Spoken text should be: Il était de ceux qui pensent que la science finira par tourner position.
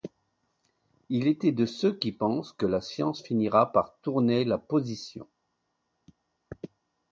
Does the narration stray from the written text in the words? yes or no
yes